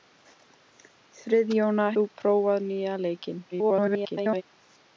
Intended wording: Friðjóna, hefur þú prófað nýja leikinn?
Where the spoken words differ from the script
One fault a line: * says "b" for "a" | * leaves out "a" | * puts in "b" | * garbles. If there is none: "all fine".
* leaves out "hefur"
* garbles